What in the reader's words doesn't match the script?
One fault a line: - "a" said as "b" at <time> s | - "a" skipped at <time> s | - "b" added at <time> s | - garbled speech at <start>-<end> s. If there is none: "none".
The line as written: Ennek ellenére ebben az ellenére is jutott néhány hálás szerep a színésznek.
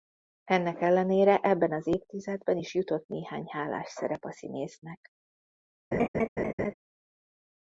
- "ellenére" said as "évtizedben" at 1.9 s